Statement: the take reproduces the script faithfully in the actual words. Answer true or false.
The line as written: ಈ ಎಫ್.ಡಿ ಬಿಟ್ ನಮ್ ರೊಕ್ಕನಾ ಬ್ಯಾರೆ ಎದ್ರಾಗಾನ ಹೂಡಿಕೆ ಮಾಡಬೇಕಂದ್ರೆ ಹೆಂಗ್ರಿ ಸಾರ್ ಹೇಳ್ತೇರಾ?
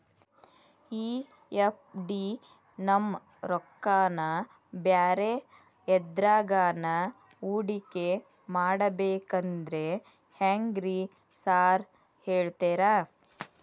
false